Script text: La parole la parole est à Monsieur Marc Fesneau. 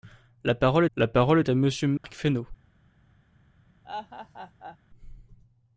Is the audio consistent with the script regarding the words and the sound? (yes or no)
no